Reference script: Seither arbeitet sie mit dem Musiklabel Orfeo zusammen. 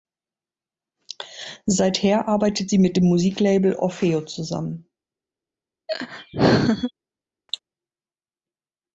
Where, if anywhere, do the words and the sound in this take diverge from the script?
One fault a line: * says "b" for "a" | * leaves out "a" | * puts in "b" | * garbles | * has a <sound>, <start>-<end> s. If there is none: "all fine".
* has a laugh, 5.9-6.9 s
* has a cough, 7.5-7.6 s